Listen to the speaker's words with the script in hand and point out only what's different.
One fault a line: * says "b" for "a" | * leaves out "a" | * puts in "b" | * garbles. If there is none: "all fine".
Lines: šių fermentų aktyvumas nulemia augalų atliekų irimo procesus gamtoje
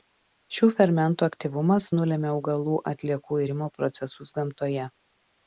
all fine